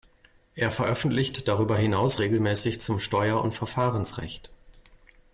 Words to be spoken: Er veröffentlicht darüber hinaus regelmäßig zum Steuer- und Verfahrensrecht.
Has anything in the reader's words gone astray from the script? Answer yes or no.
no